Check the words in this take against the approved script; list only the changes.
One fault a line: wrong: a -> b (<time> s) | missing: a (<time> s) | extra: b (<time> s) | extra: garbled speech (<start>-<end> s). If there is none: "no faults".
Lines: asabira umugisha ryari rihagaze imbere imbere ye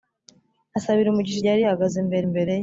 no faults